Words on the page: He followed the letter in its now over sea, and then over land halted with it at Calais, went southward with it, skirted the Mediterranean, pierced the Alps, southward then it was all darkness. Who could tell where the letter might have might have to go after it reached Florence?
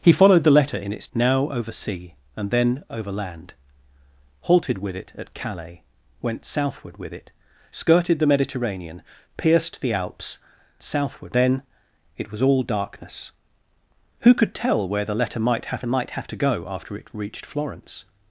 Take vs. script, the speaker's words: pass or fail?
pass